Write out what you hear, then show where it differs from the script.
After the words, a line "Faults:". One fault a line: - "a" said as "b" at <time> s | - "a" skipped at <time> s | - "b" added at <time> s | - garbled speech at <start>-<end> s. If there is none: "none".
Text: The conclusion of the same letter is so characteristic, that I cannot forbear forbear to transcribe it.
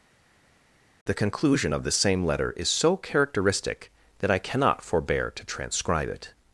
The conclusion of the same letter is so characteristic, that I cannot forbear to transcribe it.
Faults:
- "forbear" skipped at 5.3 s